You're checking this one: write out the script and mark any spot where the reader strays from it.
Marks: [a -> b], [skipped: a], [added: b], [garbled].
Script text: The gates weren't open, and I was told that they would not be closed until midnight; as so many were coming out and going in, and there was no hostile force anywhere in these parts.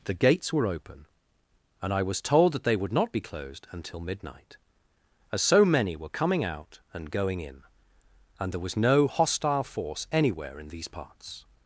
The gates [weren't -> were] open, and I was told that they would not be closed until midnight; as so many were coming out and going in, and there was no hostile force anywhere in these parts.